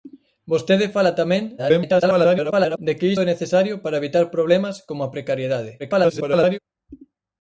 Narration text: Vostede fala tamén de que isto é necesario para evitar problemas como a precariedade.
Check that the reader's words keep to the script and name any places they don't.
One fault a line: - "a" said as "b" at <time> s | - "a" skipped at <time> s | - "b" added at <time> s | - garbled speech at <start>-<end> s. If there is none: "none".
- garbled speech at 1.6-2.8 s
- "isto" skipped at 3.1 s
- garbled speech at 5.8-6.6 s